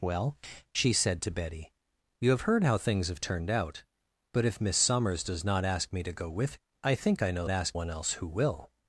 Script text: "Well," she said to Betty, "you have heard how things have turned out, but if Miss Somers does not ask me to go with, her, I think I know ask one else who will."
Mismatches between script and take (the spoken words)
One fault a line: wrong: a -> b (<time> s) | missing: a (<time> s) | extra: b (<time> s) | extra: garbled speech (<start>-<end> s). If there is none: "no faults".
no faults